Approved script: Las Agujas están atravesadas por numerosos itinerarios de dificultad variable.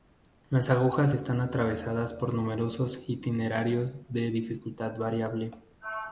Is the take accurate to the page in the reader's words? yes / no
yes